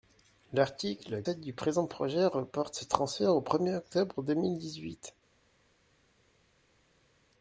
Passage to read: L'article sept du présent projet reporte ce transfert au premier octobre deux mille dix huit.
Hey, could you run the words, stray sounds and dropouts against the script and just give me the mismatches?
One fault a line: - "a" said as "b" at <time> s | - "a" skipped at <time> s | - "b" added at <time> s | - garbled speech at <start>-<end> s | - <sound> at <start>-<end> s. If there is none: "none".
none